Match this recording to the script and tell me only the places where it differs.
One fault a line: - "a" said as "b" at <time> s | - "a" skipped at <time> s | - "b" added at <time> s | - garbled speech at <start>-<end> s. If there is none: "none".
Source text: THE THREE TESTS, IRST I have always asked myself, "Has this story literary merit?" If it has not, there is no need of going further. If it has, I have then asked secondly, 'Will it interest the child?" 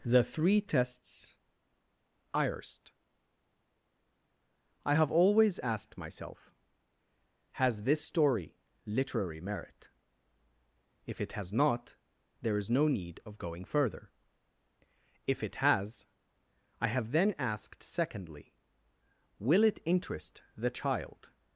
none